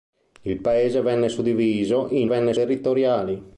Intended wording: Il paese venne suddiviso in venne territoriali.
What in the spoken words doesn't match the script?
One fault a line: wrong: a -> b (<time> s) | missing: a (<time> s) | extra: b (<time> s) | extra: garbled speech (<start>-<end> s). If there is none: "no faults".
no faults